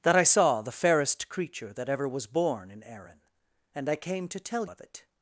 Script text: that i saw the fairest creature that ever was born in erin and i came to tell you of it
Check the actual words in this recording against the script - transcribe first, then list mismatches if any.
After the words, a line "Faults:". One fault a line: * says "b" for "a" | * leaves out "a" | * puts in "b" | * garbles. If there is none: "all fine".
that i saw the fairest creature that ever was born in erin and i came to tell of it
Faults:
* leaves out "you"